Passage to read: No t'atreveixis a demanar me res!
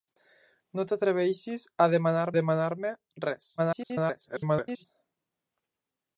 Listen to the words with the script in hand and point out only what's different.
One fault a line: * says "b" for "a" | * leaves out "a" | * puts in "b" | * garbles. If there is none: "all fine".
* puts in "demanar"
* garbles